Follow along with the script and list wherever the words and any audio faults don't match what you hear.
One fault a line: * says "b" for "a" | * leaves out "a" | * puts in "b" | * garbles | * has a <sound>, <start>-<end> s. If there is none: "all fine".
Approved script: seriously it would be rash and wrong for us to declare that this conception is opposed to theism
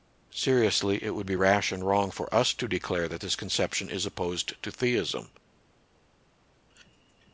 all fine